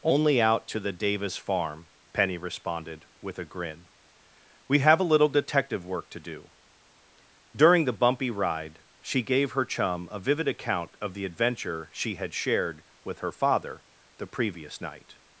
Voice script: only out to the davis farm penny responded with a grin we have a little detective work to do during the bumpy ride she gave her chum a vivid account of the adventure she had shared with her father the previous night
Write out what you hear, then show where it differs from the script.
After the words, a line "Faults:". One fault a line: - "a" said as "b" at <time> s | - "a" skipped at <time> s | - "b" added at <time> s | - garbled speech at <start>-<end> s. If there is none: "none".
only out to the davis farm penny responded with a grin we have a little detective work to do during the bumpy ride she gave her chum a vivid account of the adventure she had shared with her father the previous night
Faults:
none